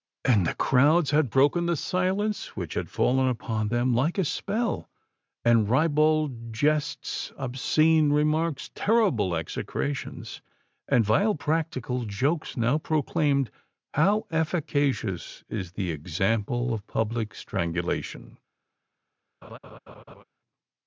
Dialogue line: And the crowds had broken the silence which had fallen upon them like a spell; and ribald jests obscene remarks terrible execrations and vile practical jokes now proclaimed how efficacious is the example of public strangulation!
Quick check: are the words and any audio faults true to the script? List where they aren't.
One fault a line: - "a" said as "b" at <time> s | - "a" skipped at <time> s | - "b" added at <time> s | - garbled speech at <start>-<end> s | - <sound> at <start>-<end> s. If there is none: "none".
- laugh at 19.4-20.2 s